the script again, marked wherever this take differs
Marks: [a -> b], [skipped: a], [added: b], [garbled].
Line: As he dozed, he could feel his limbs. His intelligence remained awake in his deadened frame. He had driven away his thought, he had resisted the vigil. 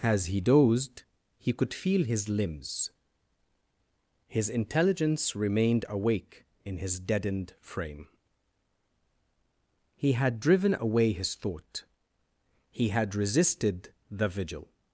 As he dozed, he could feel his limbs. His intelligence remained awake in his deadened frame. He had driven away his thought, he had resisted the vigil.